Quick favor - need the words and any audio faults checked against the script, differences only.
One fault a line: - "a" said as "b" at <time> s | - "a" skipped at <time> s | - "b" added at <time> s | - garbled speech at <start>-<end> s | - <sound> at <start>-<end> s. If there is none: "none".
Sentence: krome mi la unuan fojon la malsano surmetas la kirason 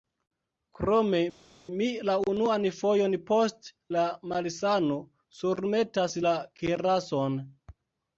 - "post" added at 3.3 s